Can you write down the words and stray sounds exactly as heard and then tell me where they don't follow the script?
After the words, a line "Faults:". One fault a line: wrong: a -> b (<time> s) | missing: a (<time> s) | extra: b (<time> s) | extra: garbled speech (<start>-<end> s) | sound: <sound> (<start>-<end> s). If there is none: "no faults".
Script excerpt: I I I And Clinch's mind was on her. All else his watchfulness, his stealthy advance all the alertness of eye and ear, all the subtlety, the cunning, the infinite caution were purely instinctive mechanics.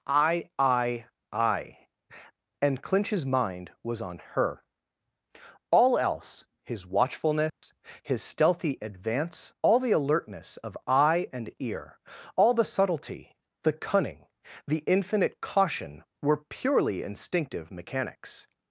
I I I And Clinch's mind was on her. All else his watchfulness, his stealthy advance all the alertness of eye and ear, all the subtlety, the cunning, the infinite caution were purely instinctive mechanics.
Faults:
sound: dropout (7.5-7.6 s)